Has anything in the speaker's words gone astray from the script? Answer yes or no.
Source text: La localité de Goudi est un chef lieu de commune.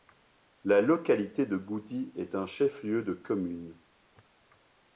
no